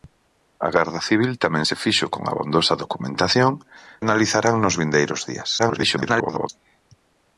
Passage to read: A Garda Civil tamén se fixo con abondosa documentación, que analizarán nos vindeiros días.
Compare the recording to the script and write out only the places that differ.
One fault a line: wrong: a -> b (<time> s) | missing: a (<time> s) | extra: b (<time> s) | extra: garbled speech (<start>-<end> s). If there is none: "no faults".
missing: que (3.5 s)
extra: garbled speech (5.6-6.5 s)